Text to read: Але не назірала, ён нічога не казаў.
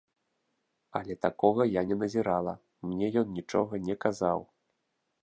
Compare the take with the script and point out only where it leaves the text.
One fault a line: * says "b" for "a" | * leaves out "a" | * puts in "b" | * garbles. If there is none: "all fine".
* puts in "такога я"
* puts in "мне"